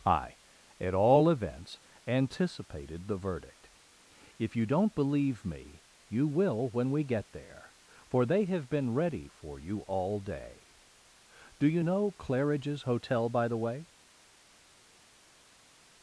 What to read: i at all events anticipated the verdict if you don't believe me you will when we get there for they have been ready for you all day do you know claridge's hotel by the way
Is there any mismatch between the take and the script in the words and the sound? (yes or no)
no